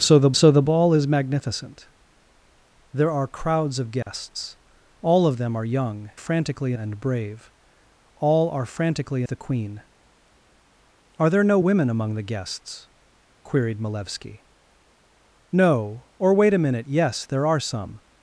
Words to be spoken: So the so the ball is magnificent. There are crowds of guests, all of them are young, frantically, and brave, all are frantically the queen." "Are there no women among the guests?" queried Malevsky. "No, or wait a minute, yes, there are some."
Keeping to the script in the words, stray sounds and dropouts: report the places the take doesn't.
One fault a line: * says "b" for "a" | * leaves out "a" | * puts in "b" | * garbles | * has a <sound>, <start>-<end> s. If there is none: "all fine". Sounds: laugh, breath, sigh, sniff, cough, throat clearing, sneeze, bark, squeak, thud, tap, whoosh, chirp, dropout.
* has a dropout, 4.0-4.1 s